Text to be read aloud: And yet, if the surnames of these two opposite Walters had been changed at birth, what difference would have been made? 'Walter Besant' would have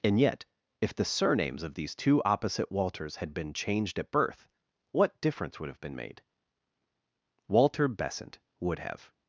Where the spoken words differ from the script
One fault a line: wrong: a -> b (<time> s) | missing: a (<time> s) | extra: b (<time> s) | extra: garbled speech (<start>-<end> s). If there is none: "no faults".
no faults